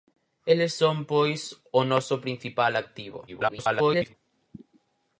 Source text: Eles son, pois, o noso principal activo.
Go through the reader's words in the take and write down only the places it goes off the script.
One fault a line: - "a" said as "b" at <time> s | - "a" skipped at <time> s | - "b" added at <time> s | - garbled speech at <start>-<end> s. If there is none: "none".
- garbled speech at 3.3-4.1 s